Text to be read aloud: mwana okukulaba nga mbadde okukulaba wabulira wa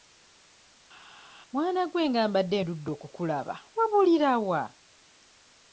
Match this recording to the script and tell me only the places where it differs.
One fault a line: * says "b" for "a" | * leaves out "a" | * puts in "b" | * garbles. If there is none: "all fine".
* says "gwe" for "okukulaba"
* puts in "ndudde"